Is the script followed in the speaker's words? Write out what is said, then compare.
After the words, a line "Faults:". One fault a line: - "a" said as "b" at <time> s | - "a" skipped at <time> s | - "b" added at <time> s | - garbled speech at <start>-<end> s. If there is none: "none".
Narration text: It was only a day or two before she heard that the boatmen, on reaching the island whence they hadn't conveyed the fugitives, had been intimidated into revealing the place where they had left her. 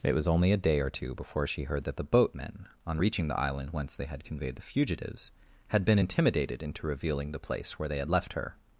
It was only a day or two before she heard that the boatmen, on reaching the island whence they had conveyed the fugitives, had been intimidated into revealing the place where they had left her.
Faults:
- "hadn't" said as "had" at 4.0 s